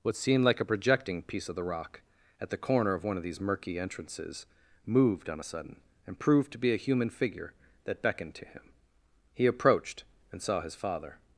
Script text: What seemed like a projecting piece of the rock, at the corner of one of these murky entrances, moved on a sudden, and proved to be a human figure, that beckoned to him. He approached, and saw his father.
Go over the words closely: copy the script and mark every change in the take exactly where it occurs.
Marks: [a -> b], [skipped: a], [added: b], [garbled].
What seemed like a projecting piece of the rock, at the corner of one of these murky entrances, moved on a sudden, and proved to be a human figure, that beckoned to him. He approached, and saw his father.